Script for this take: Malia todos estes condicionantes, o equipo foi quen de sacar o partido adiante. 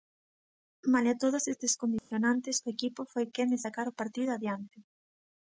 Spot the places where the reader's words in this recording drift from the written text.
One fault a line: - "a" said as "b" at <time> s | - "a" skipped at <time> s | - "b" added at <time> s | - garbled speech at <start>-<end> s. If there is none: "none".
none